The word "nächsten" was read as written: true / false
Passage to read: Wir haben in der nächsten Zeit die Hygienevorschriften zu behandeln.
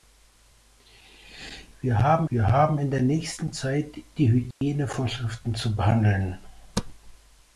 true